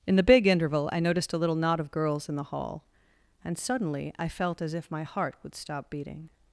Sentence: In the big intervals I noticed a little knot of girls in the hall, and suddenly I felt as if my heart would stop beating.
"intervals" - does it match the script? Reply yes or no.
no